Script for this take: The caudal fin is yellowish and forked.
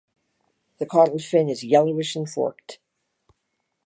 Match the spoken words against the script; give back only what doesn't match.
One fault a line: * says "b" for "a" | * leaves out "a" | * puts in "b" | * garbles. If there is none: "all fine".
all fine